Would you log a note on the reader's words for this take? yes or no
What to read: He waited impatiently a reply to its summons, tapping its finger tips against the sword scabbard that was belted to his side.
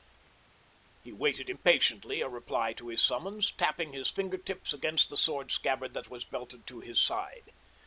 yes